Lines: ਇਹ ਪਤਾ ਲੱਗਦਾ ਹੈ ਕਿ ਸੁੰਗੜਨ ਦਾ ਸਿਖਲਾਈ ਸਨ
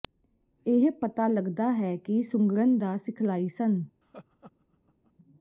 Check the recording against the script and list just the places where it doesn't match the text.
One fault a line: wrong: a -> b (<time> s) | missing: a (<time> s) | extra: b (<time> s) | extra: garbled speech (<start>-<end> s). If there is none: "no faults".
no faults